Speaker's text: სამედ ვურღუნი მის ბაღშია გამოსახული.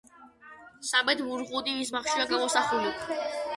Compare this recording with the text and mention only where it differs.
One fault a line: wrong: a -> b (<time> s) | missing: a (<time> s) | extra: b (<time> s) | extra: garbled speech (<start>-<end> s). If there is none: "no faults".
no faults